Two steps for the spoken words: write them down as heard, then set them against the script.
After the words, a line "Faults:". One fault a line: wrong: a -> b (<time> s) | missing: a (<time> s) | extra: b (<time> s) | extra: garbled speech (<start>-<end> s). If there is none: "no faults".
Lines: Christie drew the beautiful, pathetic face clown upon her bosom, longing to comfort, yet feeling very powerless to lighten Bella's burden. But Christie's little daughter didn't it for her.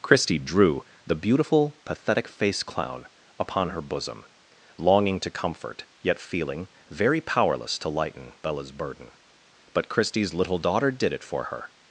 Christie drew the beautiful, pathetic face clown upon her bosom, longing to comfort, yet feeling very powerless to lighten Bella's burden. But Christie's little daughter did it for her.
Faults:
wrong: didn't -> did (10.9 s)